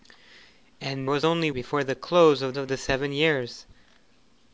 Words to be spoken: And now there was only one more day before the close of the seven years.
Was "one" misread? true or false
true